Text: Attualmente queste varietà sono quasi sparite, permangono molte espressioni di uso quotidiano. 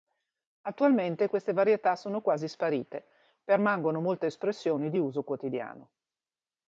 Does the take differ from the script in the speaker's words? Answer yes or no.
no